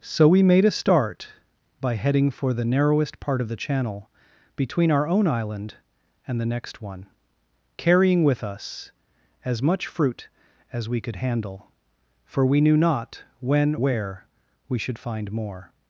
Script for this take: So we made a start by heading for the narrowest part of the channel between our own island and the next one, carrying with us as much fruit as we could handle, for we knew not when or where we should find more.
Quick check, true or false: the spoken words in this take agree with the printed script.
false